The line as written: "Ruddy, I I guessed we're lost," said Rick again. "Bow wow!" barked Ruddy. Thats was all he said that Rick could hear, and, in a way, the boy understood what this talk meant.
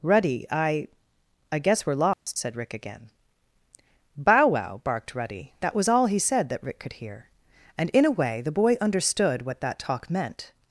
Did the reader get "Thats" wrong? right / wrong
wrong